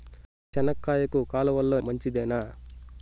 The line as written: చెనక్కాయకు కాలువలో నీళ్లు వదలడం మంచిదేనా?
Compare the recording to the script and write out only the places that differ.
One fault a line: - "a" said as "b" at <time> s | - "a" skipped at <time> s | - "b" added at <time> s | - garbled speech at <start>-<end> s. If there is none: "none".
- "నీళ్లు వదలడం" skipped at 1.8 s